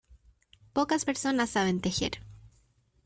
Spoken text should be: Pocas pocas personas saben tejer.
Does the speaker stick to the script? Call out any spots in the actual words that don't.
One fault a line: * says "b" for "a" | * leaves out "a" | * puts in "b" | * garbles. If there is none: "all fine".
* leaves out "pocas"